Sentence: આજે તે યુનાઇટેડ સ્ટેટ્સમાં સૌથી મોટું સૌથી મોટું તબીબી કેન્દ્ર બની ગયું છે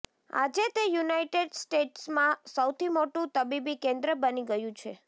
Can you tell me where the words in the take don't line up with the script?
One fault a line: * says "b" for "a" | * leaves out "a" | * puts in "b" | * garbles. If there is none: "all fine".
* leaves out "સૌથી મોટું"